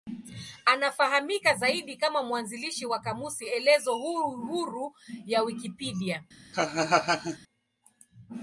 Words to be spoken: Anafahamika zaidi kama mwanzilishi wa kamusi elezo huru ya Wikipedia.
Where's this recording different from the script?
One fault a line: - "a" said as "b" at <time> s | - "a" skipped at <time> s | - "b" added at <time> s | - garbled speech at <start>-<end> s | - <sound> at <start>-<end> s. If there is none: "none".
- laugh at 6.5-7.4 s